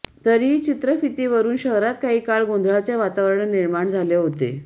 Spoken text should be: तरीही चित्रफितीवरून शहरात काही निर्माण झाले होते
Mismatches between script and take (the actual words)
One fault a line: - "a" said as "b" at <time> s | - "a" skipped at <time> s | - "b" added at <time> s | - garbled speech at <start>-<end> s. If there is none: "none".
- "काळ गोंधळाचे वातावरण" added at 2.2 s